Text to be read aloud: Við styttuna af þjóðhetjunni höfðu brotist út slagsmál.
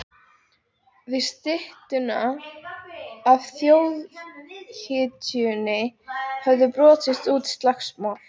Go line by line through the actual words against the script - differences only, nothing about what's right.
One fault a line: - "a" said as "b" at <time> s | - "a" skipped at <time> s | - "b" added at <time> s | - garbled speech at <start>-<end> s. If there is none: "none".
none